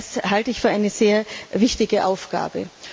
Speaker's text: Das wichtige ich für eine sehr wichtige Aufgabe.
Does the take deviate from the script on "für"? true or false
false